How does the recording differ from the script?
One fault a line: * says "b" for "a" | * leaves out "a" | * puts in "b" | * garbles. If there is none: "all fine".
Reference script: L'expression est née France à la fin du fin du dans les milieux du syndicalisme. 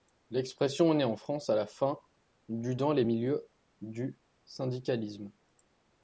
* puts in "en"
* leaves out "fin du"